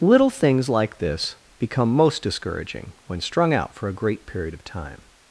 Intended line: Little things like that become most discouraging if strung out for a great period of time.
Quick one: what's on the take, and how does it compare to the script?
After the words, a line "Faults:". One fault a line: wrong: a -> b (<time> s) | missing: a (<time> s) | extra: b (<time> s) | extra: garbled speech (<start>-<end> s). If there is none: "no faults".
Little things like this become most discouraging when strung out for a great period of time.
Faults:
wrong: that -> this (1.0 s)
wrong: if -> when (3.0 s)